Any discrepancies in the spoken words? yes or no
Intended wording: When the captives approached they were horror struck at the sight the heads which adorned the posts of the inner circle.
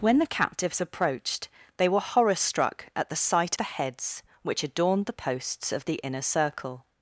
no